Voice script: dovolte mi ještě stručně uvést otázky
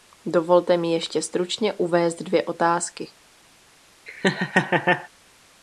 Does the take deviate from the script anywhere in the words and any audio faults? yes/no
yes